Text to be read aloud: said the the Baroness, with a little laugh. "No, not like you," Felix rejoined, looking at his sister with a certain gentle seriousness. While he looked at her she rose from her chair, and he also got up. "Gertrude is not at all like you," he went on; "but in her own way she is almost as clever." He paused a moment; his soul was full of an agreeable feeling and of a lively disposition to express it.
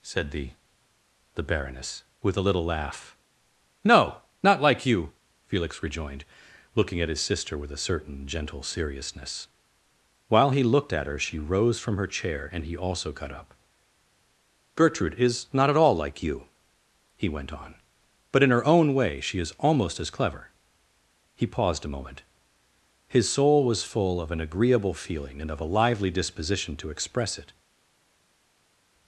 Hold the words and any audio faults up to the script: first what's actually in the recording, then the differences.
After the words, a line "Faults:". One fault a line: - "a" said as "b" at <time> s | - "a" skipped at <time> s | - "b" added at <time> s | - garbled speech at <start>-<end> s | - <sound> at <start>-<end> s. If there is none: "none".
said the the Baroness, with a little laugh. "No, not like you," Felix rejoined, looking at his sister with a certain gentle seriousness. While he looked at her she rose from her chair, and he also got up. "Gertrude is not at all like you," he went on; "but in her own way she is almost as clever." He paused a moment; his soul was full of an agreeable feeling and of a lively disposition to express it.
Faults:
none